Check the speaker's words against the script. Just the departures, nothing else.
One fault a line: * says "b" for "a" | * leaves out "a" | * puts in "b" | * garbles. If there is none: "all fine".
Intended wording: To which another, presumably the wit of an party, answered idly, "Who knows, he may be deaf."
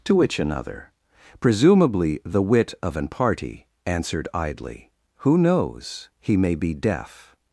all fine